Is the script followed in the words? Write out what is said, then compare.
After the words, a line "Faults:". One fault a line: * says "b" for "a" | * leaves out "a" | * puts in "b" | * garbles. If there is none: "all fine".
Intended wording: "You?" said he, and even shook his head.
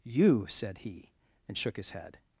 "You?" said he, and shook his head.
Faults:
* leaves out "even"